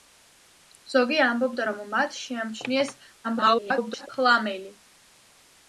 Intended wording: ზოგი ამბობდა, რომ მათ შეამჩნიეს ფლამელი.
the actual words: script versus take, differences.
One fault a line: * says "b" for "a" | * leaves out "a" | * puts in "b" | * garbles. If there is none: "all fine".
* garbles